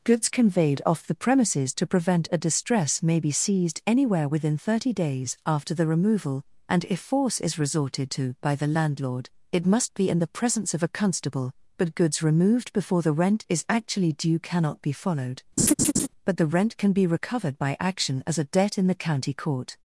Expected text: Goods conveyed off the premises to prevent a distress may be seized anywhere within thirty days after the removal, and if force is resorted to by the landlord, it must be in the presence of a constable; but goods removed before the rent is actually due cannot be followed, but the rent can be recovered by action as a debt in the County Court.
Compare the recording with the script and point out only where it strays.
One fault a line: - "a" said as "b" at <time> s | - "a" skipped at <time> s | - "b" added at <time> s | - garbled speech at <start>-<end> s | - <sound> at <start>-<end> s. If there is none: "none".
- laugh at 15.6-16.1 s